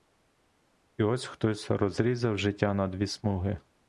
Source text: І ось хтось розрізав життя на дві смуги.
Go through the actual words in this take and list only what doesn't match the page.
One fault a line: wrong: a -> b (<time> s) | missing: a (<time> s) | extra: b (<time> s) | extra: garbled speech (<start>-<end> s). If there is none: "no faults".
no faults